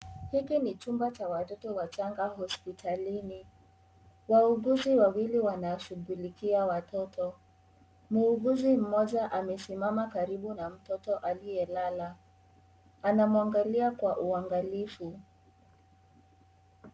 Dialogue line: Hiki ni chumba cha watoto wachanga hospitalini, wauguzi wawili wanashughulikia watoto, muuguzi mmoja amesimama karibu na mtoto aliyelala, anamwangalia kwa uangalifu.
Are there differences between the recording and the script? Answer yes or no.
no